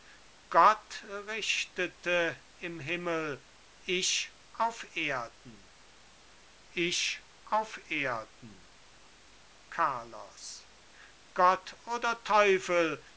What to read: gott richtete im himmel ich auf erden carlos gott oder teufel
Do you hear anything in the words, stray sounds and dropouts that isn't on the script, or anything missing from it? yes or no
yes